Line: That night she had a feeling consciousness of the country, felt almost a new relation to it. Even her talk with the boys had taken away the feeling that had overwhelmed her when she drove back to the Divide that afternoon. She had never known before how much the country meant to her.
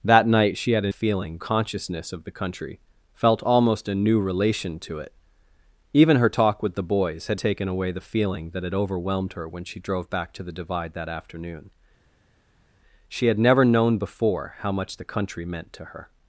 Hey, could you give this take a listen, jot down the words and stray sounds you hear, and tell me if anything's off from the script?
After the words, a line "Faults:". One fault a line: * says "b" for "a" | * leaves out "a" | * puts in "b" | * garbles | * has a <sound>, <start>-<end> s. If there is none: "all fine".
That night she had a feeling consciousness of the country, felt almost a new relation to it. Even her talk with the boys had taken away the feeling that had overwhelmed her when she drove back to the Divide that afternoon. She had never known before how much the country meant to her.
Faults:
all fine